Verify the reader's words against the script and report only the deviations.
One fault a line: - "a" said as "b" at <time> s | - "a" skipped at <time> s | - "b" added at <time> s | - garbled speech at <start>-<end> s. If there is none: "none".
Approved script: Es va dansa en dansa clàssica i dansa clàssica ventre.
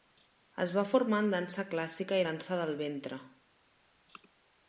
- "dansa" said as "formar" at 0.9 s
- "clàssica" said as "del" at 2.6 s